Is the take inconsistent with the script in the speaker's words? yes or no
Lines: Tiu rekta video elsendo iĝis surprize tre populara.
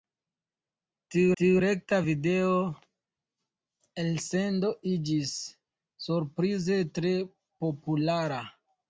yes